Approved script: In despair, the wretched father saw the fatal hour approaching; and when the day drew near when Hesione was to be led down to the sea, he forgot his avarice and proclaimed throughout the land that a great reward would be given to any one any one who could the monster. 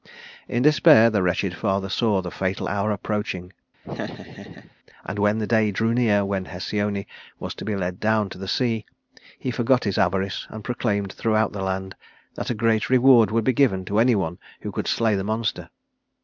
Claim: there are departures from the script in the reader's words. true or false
true